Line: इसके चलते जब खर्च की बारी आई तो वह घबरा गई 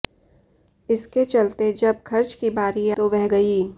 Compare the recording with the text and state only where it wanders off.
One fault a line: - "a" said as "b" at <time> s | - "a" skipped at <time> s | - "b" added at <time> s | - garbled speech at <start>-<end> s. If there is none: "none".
- "आई" skipped at 2.9 s
- "घबरा" skipped at 3.3 s